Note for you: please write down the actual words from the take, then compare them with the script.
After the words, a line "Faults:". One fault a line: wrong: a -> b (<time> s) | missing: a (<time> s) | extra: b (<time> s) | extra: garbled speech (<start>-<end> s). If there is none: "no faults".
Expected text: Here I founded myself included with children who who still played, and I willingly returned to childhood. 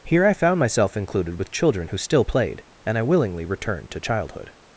Here I found myself included with children who still played, and I willingly returned to childhood.
Faults:
wrong: founded -> found (0.3 s)
missing: who (2.0 s)